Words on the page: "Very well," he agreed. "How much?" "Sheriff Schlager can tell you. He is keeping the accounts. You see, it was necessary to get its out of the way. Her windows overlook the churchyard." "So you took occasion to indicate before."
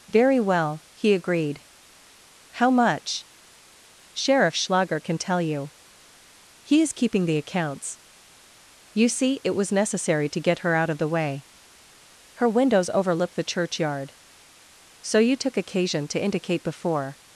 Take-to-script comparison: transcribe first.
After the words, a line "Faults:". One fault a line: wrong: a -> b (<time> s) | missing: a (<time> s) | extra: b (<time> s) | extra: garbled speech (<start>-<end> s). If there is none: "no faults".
"Very well," he agreed. "How much?" "Sheriff Schlager can tell you. He is keeping the accounts. You see, it was necessary to get her out of the way. Her windows overlook the churchyard." "So you took occasion to indicate before."
Faults:
wrong: its -> her (10.6 s)